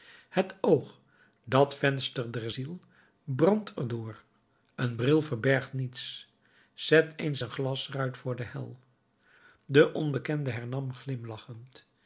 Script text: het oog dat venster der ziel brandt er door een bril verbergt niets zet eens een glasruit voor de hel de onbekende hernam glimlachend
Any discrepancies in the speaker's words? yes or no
no